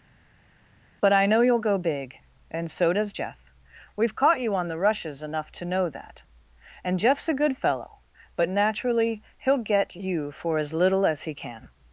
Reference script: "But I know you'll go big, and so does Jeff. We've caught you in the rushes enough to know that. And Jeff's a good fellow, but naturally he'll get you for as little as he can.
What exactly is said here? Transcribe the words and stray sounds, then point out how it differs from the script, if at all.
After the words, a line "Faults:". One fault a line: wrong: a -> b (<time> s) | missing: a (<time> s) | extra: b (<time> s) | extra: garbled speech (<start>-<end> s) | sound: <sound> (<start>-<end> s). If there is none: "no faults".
"But I know you'll go big, and so does Jeff. We've caught you on the rushes enough to know that. And Jeff's a good fellow, but naturally he'll get you for as little as he can.
Faults:
wrong: in -> on (4.6 s)